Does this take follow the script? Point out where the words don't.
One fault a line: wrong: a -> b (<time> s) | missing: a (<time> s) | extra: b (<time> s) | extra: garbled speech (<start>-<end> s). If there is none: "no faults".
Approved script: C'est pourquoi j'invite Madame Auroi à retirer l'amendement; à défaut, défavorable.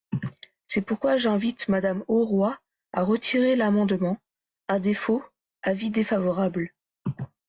extra: avis (5.6 s)